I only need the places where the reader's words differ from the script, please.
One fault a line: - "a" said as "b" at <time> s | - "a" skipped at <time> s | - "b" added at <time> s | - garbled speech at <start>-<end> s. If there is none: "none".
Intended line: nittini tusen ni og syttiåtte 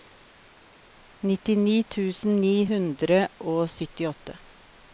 - "hundre" added at 2.7 s